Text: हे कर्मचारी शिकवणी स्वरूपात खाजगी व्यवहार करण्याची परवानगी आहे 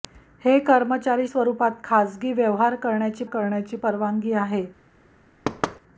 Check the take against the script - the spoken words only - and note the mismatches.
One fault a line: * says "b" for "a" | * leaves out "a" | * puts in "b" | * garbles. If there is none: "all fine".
* leaves out "शिकवणी"
* puts in "करण्याची"